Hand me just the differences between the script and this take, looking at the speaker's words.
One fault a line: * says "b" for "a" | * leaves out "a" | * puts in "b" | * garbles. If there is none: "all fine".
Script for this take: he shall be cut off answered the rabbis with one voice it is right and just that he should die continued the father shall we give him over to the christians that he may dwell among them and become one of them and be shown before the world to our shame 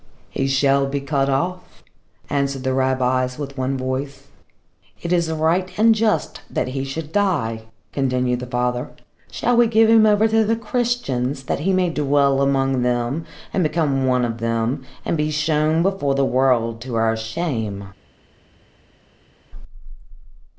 all fine